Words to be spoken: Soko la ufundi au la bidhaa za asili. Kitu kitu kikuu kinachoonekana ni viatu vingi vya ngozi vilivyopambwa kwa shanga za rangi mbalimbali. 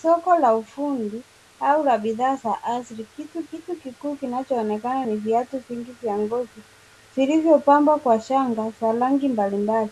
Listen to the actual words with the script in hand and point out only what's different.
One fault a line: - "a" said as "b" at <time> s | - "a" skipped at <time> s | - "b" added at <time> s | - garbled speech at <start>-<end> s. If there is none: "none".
none